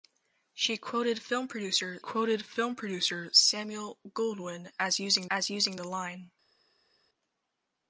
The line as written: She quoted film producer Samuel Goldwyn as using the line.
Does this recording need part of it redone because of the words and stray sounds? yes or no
yes